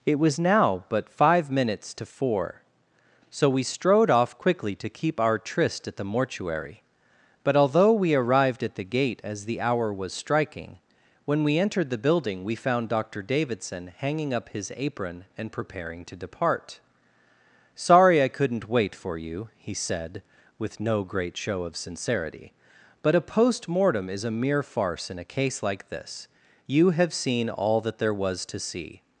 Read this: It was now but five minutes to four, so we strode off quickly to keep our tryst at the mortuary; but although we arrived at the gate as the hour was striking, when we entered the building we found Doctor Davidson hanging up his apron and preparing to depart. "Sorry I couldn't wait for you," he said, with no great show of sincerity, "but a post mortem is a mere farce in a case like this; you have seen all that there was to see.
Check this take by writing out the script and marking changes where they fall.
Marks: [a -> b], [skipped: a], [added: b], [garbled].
It was now but five minutes to four, so we strode off quickly to keep our tryst at the mortuary; but although we arrived at the gate as the hour was striking, when we entered the building we found Doctor Davidson hanging up his apron and preparing to depart. "Sorry I couldn't wait for you," he said, with no great show of sincerity, "but a post mortem is a mere farce in a case like this; you have seen all that there was to see.